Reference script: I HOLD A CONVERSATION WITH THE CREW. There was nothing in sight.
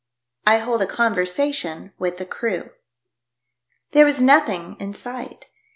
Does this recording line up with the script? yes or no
yes